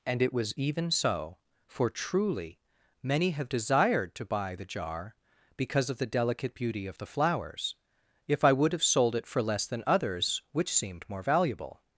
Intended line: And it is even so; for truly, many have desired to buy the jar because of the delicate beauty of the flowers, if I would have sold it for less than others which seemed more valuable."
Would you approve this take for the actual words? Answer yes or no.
no